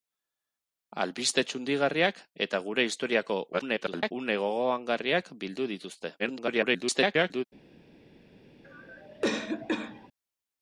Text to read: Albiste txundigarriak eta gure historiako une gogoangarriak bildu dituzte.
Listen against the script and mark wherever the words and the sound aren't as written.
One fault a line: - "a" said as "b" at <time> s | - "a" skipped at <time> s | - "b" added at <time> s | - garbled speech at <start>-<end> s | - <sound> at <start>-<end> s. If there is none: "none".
- garbled speech at 3.5-4.1 s
- garbled speech at 6.2-7.4 s
- cough at 8.6-10.1 s